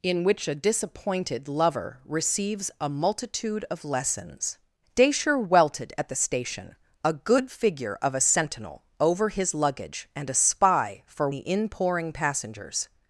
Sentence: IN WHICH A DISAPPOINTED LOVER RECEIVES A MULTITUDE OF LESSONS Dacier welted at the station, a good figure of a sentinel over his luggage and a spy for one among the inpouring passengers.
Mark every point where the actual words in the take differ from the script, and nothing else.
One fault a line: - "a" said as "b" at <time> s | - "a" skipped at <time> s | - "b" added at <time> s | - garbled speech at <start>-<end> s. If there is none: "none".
- "one among" skipped at 11.3 s